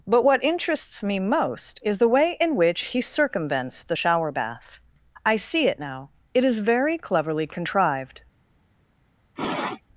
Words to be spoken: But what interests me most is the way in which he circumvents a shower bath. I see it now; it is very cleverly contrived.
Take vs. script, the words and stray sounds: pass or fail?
fail